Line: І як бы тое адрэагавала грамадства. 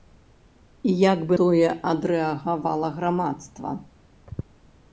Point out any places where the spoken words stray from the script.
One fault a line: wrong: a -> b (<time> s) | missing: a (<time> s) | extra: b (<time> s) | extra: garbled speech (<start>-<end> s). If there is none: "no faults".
no faults